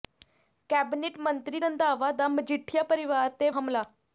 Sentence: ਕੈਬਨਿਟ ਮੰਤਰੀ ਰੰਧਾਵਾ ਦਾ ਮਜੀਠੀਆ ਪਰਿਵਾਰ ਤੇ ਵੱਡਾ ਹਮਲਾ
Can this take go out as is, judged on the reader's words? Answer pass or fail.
fail